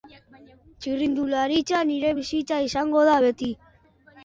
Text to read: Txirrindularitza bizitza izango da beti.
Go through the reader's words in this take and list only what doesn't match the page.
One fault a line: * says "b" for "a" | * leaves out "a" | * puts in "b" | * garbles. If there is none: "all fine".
* puts in "nire"